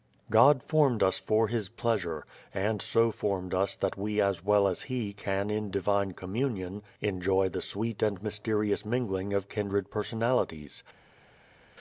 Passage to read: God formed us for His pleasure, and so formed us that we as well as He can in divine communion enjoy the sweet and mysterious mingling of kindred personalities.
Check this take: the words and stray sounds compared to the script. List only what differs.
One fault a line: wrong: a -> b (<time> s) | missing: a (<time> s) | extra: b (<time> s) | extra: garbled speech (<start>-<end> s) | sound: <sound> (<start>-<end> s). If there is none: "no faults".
no faults